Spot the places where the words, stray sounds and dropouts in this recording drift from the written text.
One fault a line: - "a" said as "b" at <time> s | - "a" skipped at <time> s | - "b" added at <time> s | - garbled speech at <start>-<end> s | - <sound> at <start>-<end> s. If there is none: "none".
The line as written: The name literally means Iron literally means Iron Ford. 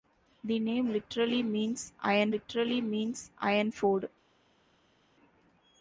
none